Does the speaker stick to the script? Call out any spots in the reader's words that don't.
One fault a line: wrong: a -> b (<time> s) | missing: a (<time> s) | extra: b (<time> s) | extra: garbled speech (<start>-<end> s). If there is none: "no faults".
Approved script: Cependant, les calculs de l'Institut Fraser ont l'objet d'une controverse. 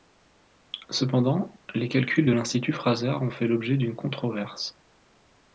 extra: fait (3.3 s)